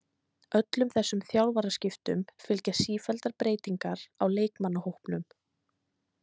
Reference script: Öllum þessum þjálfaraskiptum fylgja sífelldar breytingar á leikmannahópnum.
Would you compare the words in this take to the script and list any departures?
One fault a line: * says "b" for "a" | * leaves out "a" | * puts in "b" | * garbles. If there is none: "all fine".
all fine